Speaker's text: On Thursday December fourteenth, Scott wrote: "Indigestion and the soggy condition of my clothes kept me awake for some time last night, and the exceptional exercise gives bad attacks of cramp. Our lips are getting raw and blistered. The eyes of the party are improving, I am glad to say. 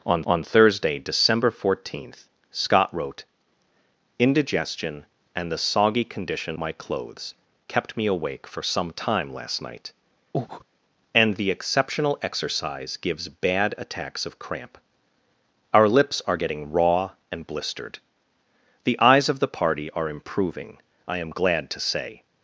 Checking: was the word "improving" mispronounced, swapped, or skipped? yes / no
no